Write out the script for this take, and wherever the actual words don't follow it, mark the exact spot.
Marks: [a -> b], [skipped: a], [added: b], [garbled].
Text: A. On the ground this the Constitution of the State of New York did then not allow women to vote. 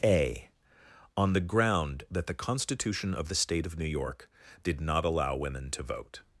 A. On the ground [this -> that] the Constitution of the State of New York did [skipped: then] not allow women to vote.